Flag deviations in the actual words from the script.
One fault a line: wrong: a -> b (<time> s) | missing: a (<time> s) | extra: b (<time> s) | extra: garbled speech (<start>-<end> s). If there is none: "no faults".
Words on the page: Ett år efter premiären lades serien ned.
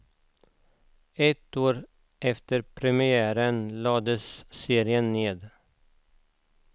no faults